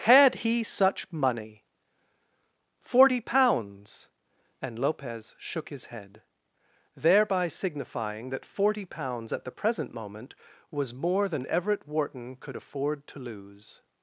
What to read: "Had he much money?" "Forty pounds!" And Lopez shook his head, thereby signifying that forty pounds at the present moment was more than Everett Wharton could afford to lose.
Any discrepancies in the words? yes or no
yes